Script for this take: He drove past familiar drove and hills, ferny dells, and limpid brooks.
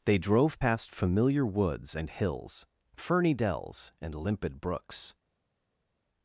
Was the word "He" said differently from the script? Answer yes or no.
yes